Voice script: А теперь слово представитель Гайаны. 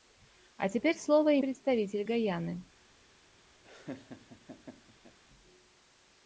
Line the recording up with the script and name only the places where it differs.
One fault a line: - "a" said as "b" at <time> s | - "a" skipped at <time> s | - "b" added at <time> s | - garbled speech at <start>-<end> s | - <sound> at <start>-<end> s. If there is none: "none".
- laugh at 3.6-5.2 s